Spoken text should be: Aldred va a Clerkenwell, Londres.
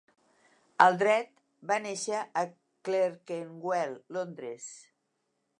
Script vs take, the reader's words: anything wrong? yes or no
yes